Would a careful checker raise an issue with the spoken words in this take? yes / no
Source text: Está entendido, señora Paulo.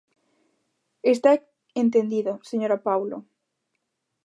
no